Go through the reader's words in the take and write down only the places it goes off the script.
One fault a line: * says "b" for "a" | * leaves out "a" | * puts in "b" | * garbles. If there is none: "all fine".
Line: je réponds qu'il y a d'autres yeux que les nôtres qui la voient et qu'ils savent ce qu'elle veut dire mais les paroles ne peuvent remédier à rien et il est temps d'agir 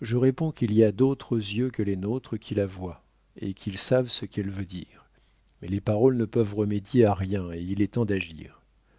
all fine